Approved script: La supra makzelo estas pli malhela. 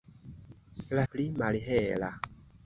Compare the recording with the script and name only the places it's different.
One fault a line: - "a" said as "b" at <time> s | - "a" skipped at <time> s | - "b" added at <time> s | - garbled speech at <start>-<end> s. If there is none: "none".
- "supra makzelo estas" skipped at 1.0 s